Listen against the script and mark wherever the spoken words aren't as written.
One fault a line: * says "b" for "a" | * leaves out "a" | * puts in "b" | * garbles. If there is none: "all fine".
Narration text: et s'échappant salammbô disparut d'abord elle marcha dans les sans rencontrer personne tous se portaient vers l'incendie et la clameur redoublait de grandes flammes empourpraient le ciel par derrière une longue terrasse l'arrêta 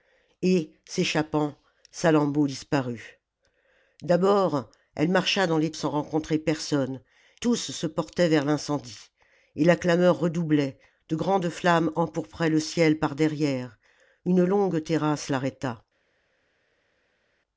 all fine